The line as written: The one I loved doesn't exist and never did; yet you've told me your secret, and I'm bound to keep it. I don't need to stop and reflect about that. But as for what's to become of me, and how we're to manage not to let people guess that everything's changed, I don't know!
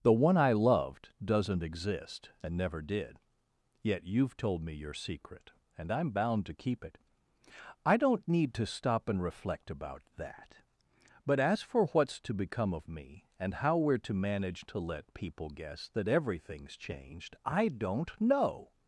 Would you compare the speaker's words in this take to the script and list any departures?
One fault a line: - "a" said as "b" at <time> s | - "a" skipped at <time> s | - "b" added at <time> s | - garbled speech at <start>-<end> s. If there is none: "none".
- "not" skipped at 14.7 s